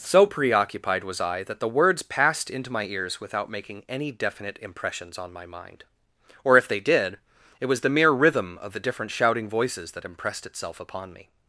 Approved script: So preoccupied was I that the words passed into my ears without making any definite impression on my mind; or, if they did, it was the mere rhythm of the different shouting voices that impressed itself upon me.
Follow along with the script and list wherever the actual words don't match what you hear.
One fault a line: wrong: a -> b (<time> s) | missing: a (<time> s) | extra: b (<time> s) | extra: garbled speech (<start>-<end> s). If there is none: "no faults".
wrong: impression -> impressions (4.6 s)